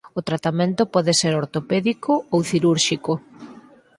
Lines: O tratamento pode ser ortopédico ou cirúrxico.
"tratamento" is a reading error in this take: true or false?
false